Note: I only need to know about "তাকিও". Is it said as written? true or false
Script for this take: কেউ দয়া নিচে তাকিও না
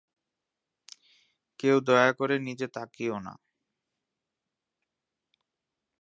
true